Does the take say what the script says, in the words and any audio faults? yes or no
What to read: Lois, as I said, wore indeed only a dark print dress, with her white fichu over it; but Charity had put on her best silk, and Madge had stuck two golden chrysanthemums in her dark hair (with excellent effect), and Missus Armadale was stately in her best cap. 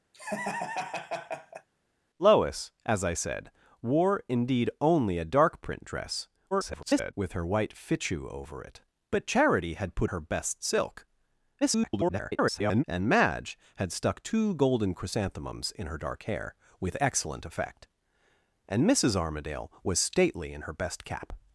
no